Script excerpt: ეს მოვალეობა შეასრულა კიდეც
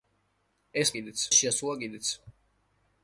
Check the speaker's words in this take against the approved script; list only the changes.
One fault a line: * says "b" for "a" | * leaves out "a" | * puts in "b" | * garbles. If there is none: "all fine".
* says "კიდეც" for "მოვალეობა"